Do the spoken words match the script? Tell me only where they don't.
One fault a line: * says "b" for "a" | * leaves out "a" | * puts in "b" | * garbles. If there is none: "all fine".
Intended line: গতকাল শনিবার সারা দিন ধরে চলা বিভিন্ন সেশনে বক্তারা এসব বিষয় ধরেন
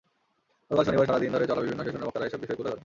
* puts in "তুলে"